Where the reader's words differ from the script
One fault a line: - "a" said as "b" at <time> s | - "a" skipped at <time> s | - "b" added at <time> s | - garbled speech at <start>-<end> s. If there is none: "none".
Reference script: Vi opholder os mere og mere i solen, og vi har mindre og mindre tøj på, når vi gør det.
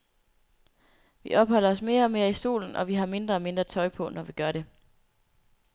none